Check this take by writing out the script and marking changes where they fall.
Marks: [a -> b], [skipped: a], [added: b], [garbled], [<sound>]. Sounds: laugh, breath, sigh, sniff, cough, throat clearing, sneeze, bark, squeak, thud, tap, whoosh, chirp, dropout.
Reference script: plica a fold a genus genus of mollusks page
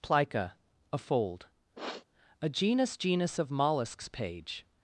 plica a fold [sniff] a genus genus of mollusks page